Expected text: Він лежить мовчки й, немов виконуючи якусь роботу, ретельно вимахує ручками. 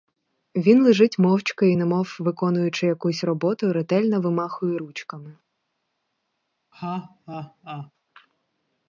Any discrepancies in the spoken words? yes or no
no